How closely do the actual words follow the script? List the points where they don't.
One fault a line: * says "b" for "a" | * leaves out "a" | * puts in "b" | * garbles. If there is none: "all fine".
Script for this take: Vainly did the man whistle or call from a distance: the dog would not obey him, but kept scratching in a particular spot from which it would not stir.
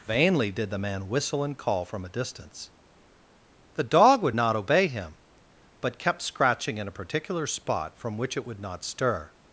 * says "and" for "or"